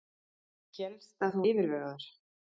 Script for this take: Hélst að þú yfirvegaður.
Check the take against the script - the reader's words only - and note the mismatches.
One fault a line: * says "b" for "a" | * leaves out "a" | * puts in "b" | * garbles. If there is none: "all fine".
all fine